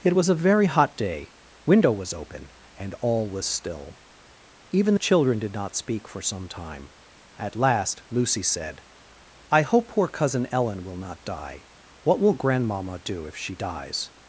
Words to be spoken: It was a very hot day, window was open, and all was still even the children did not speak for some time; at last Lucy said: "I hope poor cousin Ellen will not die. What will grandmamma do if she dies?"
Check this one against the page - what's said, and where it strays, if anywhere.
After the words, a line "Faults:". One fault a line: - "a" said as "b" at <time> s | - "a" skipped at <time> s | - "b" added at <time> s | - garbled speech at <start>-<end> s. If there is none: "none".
It was a very hot day, window was open, and all was still even the children did not speak for some time; at last Lucy said: "I hope poor cousin Ellen will not die. What will grandmamma do if she dies?"
Faults:
none